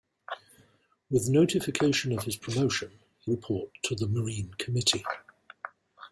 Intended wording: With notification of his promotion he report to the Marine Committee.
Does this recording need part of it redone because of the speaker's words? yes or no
no